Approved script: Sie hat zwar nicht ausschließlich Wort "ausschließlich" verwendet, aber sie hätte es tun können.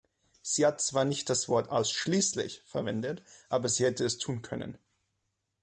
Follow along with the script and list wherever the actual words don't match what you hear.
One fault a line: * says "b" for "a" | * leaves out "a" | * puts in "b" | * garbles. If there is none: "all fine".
* says "das" for "ausschließlich"